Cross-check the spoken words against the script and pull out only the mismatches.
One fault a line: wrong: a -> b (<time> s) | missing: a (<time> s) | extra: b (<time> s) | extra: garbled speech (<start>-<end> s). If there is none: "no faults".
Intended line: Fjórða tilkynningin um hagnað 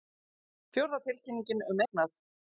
no faults